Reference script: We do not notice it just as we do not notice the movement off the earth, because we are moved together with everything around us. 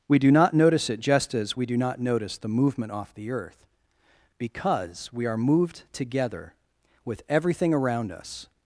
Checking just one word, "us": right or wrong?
right